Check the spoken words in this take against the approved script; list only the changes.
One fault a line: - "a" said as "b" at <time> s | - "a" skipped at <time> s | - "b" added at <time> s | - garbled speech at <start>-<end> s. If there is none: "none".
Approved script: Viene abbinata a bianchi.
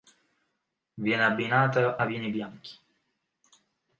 - "vini" added at 2.0 s